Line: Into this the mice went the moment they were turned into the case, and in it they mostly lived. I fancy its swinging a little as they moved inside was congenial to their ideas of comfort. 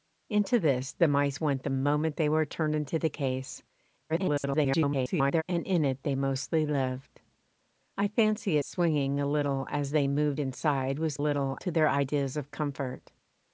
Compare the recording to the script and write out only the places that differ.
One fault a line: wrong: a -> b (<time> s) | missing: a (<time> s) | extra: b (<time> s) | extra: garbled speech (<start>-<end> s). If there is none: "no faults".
extra: garbled speech (4.1-5.4 s)
missing: its (8.6 s)
wrong: congenial -> little (11.2 s)